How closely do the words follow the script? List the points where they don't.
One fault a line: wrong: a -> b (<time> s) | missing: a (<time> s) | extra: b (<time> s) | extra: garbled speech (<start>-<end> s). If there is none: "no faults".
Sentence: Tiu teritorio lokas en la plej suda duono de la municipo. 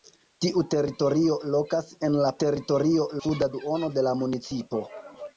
wrong: plej -> teritorio (2.4 s)